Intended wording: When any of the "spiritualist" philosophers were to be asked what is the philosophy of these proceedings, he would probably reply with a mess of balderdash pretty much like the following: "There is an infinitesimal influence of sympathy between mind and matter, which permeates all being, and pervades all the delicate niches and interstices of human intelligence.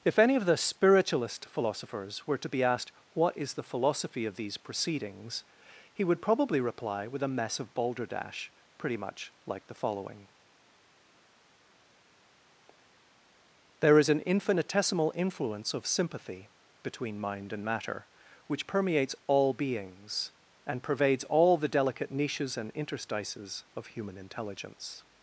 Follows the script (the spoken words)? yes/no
no